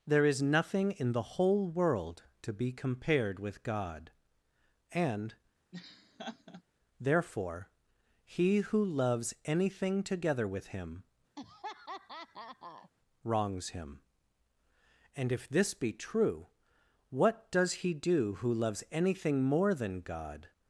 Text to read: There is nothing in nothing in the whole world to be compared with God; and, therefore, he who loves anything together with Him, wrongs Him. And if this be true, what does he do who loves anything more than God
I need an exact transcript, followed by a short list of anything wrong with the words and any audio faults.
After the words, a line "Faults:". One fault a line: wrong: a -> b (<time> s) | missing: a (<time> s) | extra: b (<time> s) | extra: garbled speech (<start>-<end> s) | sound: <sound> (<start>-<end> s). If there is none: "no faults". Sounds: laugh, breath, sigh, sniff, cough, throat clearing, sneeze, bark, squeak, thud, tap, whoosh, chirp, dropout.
There is nothing in the whole world to be compared with God; and, therefore, he who loves anything together with Him, wrongs Him. And if this be true, what does he do who loves anything more than God
Faults:
missing: nothing in (1.1 s)
sound: laugh (5.7-6.6 s)
sound: laugh (11.4-12.9 s)